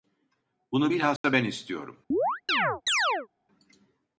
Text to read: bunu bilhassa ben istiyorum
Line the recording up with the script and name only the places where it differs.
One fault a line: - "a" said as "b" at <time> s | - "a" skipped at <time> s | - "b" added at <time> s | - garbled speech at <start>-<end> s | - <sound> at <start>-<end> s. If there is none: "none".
- dropout at 1.2-1.2 s
- chirp at 2.1-3.3 s